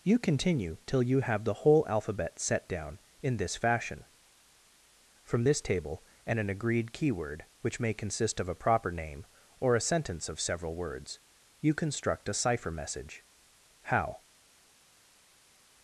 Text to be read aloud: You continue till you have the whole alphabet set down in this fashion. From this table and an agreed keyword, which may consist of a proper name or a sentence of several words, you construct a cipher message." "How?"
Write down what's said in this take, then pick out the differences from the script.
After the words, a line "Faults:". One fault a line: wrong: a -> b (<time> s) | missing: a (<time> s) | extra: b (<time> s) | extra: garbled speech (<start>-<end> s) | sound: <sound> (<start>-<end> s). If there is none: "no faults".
You continue till you have the whole alphabet set down in this fashion. From this table and an agreed keyword, which may consist of a proper name or a sentence of several words, you construct a cipher message." "How?"
Faults:
no faults